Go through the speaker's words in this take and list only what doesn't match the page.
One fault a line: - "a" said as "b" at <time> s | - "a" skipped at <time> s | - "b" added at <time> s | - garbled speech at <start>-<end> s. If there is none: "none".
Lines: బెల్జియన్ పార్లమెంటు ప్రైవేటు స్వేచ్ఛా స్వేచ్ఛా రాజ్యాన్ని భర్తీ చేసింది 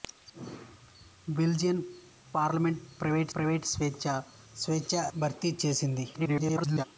- "ప్రైవేటు" added at 3.4 s
- "రాజ్యాన్ని" skipped at 5.0 s
- garbled speech at 6.1-6.8 s